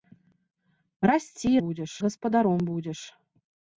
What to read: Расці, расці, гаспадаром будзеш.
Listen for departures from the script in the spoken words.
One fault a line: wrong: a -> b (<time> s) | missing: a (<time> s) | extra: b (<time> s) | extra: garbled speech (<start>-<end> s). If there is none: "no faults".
wrong: расці -> будзеш (1.6 s)